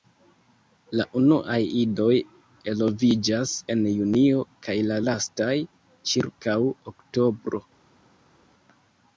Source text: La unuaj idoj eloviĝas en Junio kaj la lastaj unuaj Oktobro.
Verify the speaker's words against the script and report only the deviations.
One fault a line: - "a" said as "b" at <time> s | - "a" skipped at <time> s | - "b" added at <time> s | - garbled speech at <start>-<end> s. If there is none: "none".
- "unuaj" said as "ĉirkaŭ" at 6.1 s